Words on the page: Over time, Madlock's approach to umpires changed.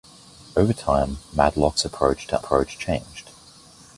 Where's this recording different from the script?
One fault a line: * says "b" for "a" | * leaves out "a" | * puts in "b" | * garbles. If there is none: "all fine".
* says "approach" for "umpires"